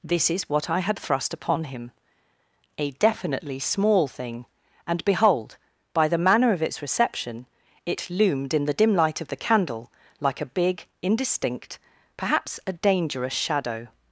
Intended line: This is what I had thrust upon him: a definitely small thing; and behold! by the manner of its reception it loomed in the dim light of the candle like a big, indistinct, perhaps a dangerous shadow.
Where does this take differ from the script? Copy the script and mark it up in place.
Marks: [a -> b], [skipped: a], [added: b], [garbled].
This is what I had thrust upon him: a definitely small thing; and behold! by the manner of its reception it loomed in the dim light of the candle like a big, indistinct, perhaps a dangerous shadow.